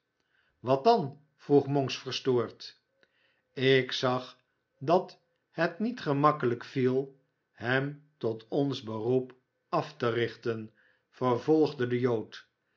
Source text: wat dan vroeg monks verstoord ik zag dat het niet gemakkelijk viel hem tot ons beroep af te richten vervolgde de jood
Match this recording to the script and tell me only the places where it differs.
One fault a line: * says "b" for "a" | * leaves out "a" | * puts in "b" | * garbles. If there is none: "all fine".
all fine